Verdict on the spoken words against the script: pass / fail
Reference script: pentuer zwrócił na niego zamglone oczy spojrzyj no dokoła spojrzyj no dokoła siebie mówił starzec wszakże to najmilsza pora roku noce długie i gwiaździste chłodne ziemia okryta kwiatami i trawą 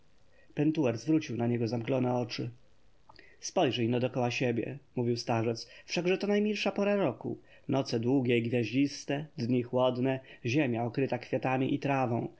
fail